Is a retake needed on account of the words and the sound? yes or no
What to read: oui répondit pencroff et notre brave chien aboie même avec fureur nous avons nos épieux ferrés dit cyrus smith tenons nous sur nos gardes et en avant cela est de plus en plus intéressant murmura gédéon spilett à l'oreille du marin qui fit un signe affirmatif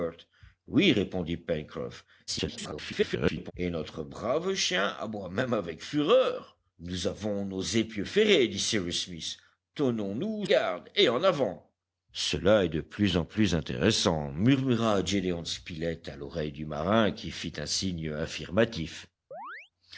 yes